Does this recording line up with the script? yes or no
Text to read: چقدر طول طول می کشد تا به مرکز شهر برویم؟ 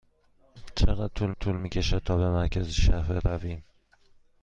yes